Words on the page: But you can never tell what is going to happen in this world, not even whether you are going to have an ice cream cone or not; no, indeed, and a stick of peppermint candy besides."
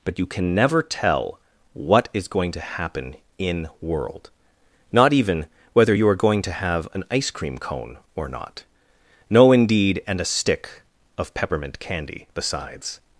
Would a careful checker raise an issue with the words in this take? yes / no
yes